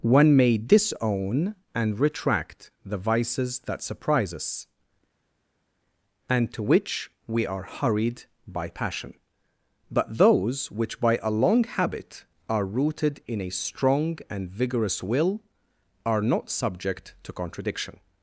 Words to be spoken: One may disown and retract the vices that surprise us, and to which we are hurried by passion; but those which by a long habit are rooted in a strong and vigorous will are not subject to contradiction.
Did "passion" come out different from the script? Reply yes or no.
no